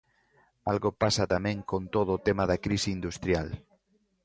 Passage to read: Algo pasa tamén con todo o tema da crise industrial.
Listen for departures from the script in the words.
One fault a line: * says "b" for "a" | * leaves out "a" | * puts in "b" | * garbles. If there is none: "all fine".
all fine